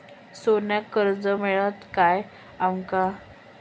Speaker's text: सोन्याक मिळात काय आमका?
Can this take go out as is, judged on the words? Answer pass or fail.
fail